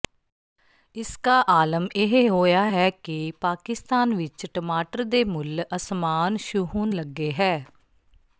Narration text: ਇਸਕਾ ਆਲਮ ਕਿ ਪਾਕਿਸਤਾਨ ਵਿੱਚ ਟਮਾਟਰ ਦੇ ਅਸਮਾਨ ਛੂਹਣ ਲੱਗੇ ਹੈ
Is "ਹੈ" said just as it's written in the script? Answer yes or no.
yes